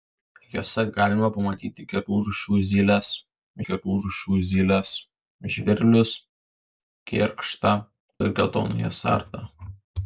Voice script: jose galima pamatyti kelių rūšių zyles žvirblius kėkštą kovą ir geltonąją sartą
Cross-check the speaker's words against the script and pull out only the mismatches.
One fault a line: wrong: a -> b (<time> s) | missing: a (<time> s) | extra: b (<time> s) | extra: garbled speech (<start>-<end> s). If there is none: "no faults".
extra: kelių rūšių zyles (3.7 s)
missing: kovą (7.8 s)